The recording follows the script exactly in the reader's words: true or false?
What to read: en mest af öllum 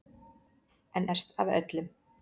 true